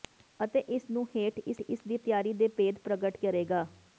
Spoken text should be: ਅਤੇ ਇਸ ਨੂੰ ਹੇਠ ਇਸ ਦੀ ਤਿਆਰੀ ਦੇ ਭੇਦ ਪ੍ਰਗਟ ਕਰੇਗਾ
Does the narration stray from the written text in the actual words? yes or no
yes